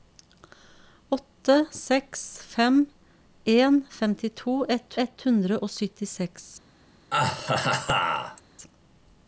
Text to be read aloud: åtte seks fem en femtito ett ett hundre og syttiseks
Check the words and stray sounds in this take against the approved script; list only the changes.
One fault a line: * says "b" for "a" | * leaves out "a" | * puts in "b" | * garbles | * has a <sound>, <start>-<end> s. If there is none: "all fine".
* has a laugh, 7.1-8.4 s